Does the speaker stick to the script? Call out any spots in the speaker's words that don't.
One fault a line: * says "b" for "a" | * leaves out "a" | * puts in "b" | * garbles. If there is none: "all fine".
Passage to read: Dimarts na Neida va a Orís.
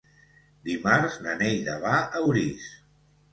all fine